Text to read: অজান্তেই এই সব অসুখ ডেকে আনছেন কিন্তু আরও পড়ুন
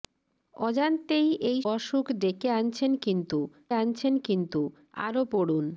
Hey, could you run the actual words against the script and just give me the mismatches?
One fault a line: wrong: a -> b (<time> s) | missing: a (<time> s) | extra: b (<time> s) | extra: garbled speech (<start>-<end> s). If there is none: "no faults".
missing: সব (1.6 s)
extra: আনছেন কিন্তু (3.7 s)